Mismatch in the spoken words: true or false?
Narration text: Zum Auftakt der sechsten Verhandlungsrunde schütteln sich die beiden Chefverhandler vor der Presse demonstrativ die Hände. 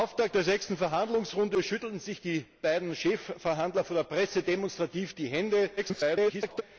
true